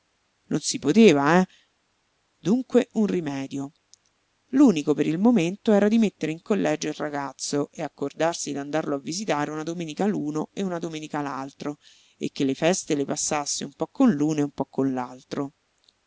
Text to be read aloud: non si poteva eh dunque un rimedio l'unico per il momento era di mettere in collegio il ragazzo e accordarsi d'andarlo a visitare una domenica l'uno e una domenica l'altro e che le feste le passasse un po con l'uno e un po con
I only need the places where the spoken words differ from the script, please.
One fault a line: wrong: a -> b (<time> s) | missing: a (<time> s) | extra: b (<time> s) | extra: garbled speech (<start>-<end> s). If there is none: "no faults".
no faults